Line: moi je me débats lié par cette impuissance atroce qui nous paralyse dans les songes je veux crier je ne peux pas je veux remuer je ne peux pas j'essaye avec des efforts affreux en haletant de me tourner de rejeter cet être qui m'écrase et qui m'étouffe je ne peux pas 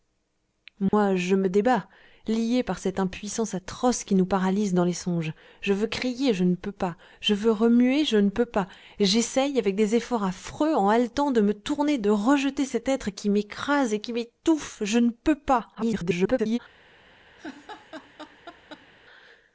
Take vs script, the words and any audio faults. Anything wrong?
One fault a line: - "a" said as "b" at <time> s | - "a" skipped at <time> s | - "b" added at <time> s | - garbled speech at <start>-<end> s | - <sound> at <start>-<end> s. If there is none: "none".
- dropout at 0.9-0.9 s
- garbled speech at 15.7-16.6 s
- laugh at 17.4-18.9 s